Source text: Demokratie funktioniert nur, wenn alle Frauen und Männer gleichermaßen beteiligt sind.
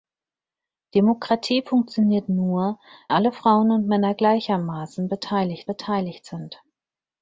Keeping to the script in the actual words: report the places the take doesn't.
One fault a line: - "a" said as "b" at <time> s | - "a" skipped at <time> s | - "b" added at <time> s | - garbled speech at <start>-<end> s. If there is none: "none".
- "wenn" skipped at 2.8 s
- "beteiligt" added at 5.7 s